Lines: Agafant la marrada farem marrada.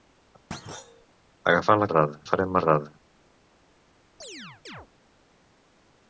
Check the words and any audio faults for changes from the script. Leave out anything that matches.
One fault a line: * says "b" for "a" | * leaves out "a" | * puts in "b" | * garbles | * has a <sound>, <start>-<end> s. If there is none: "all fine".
* has a thud, 0.5-1.1 s
* has a chirp, 4.2-4.9 s